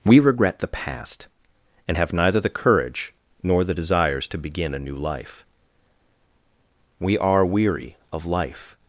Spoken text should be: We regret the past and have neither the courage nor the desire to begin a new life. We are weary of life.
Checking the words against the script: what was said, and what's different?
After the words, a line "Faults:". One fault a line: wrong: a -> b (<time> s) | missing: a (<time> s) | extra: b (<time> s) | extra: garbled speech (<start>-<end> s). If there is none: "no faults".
We regret the past and have neither the courage nor the desires to begin a new life. We are weary of life.
Faults:
wrong: desire -> desires (3.7 s)